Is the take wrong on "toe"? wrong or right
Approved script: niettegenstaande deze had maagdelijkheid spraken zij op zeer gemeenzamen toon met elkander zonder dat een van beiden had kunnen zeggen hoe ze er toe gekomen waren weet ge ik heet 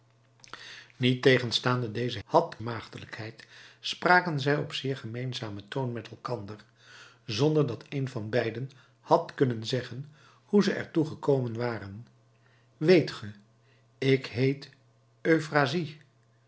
right